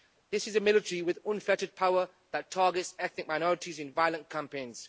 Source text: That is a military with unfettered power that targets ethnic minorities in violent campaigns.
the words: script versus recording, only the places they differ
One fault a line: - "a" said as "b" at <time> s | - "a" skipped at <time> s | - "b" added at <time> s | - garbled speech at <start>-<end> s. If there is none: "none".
- "That" said as "This" at 0.3 s